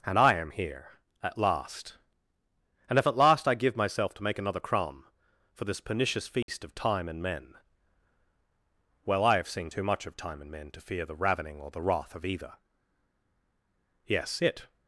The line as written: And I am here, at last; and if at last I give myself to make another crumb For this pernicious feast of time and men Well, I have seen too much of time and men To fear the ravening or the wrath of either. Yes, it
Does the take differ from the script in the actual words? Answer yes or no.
no